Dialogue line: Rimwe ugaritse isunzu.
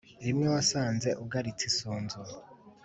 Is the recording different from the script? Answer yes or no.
yes